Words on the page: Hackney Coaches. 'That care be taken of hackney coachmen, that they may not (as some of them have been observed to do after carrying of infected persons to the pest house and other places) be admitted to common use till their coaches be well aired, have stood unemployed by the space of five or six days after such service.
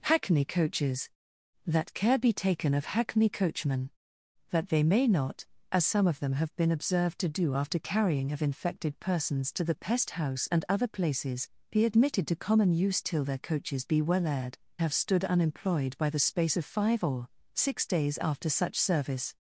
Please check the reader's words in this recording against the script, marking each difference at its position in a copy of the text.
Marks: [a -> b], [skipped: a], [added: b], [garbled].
Hackney Coaches. 'That care be taken of hackney coachmen, that they may not (as some of them have been observed to do after carrying of infected persons to the pest house and other places) be admitted to common use till their coaches be well aired, have stood unemployed by the space of five or six days after such service.